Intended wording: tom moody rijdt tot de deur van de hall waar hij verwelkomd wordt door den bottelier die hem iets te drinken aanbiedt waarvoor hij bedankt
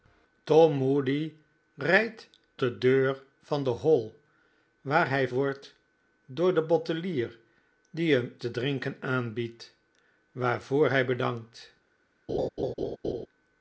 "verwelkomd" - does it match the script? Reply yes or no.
no